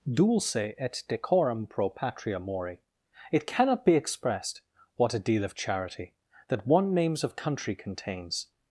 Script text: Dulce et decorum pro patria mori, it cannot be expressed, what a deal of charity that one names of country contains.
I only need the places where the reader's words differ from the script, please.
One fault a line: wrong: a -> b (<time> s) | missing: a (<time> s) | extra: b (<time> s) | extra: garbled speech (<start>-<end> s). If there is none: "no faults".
no faults